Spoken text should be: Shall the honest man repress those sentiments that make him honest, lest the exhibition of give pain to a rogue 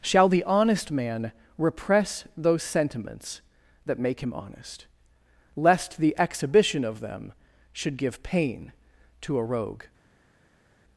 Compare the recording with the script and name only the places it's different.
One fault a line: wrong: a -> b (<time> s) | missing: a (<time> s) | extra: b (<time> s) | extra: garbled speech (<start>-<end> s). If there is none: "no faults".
extra: them should (7.0 s)